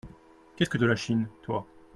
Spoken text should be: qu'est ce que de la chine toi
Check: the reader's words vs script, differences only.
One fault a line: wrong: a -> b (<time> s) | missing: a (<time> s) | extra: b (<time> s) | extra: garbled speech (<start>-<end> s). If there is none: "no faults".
no faults